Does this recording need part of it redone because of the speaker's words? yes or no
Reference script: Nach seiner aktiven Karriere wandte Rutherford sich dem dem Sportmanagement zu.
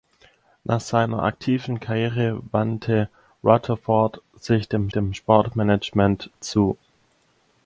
no